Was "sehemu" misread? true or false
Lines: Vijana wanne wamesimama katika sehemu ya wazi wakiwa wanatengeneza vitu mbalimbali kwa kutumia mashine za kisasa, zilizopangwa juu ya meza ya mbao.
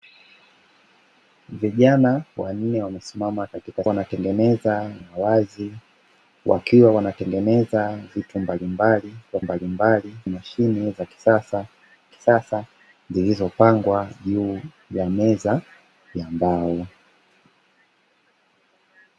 true